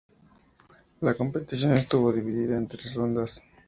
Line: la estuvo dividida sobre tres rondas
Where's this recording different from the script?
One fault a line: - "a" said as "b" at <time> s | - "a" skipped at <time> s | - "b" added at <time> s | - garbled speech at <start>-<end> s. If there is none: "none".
- "competición" added at 1.1 s
- "sobre" said as "en" at 2.6 s